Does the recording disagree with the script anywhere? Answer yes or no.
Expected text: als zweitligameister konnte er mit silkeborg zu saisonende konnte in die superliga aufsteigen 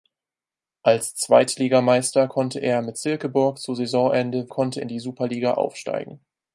no